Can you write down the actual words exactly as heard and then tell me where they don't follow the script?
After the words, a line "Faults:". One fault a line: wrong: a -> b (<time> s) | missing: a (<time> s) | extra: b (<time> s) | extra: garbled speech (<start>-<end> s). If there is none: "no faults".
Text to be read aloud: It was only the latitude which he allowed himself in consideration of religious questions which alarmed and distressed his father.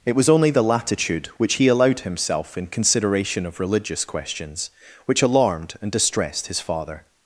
It was only the latitude which he allowed himself in consideration of religious questions which alarmed and distressed his father.
Faults:
no faults